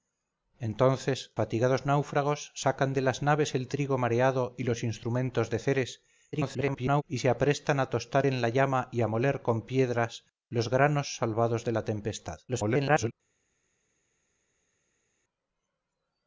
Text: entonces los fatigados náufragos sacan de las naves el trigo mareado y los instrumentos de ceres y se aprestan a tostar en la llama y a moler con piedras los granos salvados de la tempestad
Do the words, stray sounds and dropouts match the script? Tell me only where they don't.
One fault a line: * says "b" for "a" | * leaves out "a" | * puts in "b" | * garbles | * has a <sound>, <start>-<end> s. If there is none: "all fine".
* leaves out "los"
* garbles
* garbles